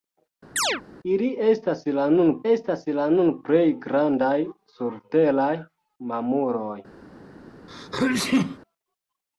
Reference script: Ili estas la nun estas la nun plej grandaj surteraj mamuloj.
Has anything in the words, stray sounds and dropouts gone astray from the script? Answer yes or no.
yes